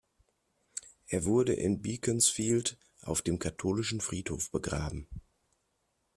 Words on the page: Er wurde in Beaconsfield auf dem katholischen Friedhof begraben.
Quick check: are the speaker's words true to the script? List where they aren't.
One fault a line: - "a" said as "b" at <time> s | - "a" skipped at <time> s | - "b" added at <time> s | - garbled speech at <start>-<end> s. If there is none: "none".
none